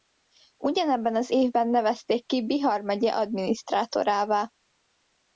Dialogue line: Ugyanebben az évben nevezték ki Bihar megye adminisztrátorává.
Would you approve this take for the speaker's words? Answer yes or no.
yes